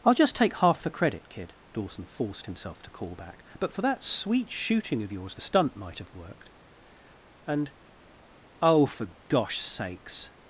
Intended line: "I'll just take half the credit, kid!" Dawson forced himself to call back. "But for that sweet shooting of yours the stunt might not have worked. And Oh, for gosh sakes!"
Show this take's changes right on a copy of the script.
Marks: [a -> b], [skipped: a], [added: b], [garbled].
"I'll just take half the credit, kid!" Dawson forced himself to call back. "But for that sweet shooting of yours the stunt might [skipped: not] have worked. And Oh, for gosh sakes!"